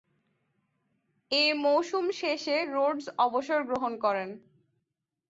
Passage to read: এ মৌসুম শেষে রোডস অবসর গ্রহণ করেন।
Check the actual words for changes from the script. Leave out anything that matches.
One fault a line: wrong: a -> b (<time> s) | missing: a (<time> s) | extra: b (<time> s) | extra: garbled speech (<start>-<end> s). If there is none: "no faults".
no faults